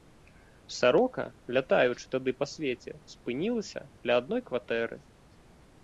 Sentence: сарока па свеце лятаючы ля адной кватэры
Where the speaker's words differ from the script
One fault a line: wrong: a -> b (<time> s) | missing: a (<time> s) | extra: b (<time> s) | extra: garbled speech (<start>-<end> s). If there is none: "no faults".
extra: лятаючы тады (1.6 s)
wrong: лятаючы -> спынілася (3.2 s)